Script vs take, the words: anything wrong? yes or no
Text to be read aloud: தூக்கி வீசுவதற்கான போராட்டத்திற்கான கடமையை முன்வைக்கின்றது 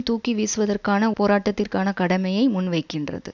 no